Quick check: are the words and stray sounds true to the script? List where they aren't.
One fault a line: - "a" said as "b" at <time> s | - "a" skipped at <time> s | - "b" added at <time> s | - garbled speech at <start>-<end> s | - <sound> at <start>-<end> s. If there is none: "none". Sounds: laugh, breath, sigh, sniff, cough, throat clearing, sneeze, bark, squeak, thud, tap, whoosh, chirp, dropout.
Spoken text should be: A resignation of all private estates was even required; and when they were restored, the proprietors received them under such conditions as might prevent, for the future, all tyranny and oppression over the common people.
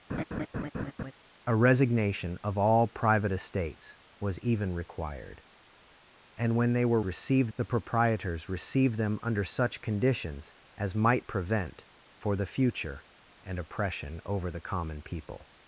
- laugh at 0.1-1.1 s
- "restored" said as "received" at 7.0 s
- "all tyranny" skipped at 13.0 s